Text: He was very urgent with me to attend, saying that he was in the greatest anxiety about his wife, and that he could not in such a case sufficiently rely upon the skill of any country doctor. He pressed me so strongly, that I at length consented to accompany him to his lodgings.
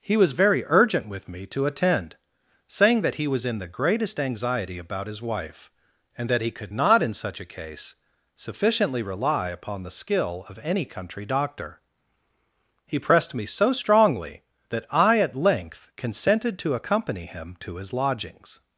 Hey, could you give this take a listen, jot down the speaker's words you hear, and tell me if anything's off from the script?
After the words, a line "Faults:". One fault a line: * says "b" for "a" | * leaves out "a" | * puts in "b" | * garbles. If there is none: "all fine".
He was very urgent with me to attend, saying that he was in the greatest anxiety about his wife, and that he could not in such a case sufficiently rely upon the skill of any country doctor. He pressed me so strongly, that I at length consented to accompany him to his lodgings.
Faults:
all fine